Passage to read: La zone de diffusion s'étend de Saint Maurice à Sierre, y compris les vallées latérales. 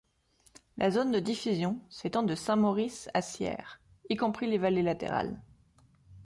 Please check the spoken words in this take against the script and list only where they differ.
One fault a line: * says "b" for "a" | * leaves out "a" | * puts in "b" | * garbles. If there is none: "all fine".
all fine